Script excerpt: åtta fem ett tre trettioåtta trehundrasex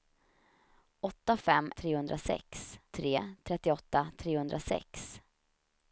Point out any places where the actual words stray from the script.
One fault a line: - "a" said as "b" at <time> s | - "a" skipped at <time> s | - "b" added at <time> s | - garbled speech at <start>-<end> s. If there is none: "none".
- "ett" said as "trehundrasex" at 1.8 s